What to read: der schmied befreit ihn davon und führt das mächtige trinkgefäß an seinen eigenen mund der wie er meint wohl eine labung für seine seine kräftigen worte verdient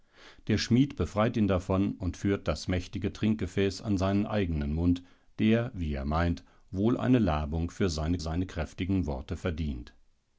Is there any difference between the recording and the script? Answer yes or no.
no